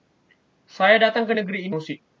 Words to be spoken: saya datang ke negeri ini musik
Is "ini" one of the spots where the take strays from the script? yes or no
no